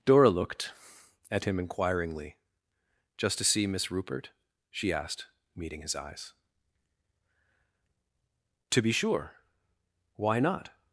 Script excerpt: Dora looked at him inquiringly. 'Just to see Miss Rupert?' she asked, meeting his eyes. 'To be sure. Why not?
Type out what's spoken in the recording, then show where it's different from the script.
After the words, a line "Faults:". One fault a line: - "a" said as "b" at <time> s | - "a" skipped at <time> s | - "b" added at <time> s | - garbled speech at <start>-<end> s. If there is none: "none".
Dora looked at him inquiringly. 'Just to see Miss Rupert?' she asked, meeting his eyes. 'To be sure. Why not?
Faults:
none